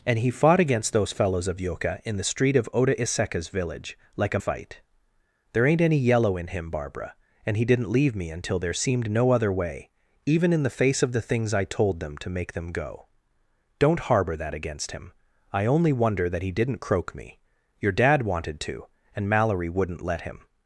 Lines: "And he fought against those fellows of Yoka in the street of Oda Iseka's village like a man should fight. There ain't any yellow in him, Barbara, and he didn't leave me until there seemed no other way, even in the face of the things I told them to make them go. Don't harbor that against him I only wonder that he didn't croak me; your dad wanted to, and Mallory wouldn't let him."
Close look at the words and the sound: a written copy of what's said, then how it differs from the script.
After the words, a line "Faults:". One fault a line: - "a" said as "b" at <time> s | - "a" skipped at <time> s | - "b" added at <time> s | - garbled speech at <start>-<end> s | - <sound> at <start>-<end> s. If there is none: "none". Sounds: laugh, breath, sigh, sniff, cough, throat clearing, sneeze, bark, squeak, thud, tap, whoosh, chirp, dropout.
"And he fought against those fellows of Yoka in the street of Oda Iseka's village like a fight. There ain't any yellow in him, Barbara, and he didn't leave me until there seemed no other way, even in the face of the things I told them to make them go. Don't harbor that against him I only wonder that he didn't croak me; your dad wanted to, and Mallory wouldn't let him."
Faults:
- "man should" skipped at 4.4 s